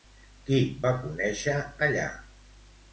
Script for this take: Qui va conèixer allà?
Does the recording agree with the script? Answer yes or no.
yes